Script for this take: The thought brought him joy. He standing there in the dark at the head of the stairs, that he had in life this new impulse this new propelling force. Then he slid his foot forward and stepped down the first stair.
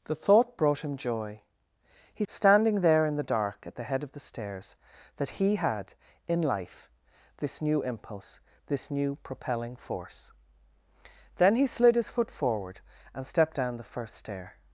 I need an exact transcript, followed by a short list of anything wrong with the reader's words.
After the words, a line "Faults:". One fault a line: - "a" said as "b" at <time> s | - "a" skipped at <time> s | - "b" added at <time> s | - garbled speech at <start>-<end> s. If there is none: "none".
The thought brought him joy. He standing there in the dark at the head of the stairs, that he had in life this new impulse this new propelling force. Then he slid his foot forward and stepped down the first stair.
Faults:
none